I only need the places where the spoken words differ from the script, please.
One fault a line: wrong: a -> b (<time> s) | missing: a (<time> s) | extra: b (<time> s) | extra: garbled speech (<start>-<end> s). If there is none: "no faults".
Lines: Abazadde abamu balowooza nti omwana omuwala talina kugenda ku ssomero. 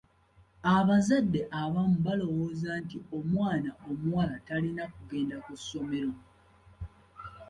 no faults